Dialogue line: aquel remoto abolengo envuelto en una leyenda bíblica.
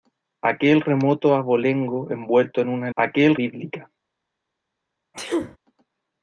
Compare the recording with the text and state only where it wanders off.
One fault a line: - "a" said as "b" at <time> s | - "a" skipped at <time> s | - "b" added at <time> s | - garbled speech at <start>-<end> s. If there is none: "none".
- "leyenda" said as "aquel" at 3.0 s